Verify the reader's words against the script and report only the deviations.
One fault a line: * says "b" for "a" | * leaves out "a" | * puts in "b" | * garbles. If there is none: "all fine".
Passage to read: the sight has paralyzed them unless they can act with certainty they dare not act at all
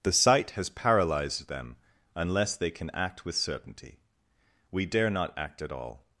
* says "we" for "they"